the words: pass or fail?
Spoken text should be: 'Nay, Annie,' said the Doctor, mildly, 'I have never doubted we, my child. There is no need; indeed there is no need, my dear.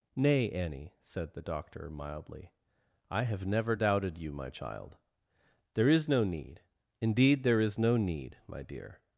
fail